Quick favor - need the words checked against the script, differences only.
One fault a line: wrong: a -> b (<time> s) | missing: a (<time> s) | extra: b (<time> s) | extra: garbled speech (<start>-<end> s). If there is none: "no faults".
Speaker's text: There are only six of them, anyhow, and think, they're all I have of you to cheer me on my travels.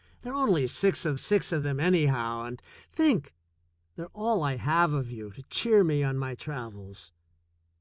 extra: six of (1.1 s)